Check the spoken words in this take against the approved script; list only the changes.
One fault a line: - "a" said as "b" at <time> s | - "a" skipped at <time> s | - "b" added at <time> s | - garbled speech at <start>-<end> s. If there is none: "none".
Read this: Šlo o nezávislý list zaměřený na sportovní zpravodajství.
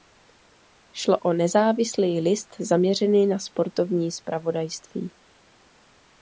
none